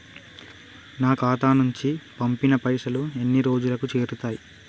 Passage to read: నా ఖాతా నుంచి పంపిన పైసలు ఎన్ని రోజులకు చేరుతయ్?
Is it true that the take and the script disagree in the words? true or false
false